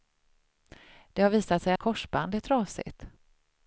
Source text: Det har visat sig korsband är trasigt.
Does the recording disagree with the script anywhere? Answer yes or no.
no